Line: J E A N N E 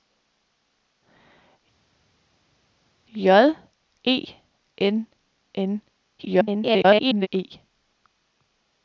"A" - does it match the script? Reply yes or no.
no